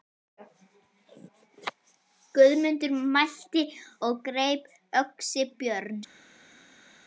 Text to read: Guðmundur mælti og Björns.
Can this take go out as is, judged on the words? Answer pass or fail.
fail